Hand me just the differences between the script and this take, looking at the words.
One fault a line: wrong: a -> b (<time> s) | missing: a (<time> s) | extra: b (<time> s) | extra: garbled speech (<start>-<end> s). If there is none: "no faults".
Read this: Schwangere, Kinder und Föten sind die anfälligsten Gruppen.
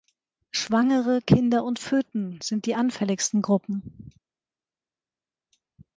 no faults